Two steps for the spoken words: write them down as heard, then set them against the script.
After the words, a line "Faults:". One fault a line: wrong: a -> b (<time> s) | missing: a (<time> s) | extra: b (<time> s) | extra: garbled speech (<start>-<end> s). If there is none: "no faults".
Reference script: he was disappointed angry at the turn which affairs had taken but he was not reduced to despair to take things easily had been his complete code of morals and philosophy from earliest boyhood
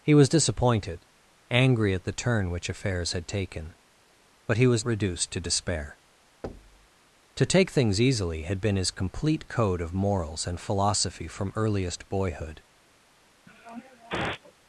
he was disappointed angry at the turn which affairs had taken but he was reduced to despair to take things easily had been his complete code of morals and philosophy from earliest boyhood
Faults:
missing: not (4.8 s)